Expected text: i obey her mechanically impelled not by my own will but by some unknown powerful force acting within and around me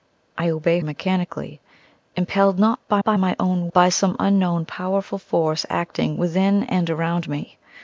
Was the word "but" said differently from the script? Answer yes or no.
yes